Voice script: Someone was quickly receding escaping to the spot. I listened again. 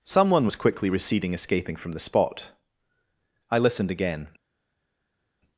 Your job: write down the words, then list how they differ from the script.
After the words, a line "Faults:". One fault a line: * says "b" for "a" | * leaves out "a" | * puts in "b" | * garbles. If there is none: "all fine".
Someone was quickly receding escaping from the spot. I listened again.
Faults:
* says "from" for "to"